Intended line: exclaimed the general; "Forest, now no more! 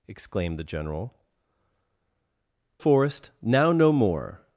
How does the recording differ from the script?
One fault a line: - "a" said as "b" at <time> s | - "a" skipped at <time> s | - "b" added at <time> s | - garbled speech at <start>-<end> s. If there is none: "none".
none